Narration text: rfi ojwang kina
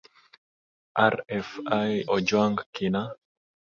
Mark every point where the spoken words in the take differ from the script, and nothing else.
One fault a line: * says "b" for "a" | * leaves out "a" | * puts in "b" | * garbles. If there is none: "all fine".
all fine